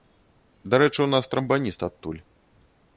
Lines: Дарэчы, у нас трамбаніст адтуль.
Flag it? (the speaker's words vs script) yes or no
no